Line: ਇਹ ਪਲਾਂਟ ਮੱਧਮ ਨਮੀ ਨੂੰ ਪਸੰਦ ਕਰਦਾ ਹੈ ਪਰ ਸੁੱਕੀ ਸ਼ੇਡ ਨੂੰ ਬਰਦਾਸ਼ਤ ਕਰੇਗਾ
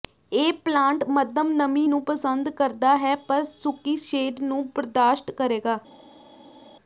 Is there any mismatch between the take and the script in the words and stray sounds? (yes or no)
no